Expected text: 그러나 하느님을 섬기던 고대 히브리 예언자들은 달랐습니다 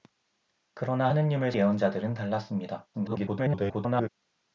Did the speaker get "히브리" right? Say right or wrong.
wrong